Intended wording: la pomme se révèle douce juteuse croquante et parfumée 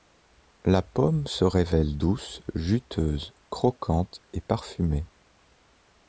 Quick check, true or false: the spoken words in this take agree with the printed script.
true